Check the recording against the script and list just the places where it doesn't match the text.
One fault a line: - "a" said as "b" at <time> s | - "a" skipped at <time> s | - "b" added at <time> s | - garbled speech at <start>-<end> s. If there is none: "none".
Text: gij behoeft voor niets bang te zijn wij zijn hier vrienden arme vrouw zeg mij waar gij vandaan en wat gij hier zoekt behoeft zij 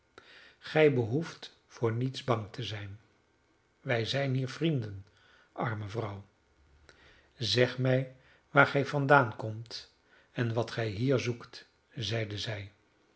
- "komt" added at 9.3 s
- "behoeft" said as "zeide" at 11.9 s